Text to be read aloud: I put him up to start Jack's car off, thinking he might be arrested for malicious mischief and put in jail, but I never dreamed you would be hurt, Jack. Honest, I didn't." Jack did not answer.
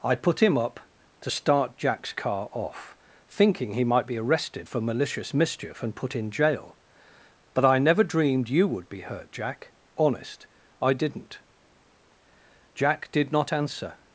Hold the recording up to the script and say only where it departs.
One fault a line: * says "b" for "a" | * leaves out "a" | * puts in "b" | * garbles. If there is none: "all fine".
all fine